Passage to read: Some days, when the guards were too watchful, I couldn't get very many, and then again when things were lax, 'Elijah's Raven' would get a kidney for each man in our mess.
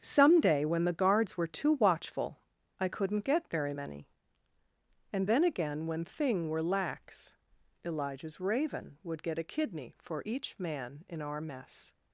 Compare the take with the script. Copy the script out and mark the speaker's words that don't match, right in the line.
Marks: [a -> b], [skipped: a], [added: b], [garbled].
Some [days, -> day] when the guards were too watchful, I couldn't get very many, and then again when [things -> thing] were lax, 'Elijah's Raven' would get a kidney for each man in our mess.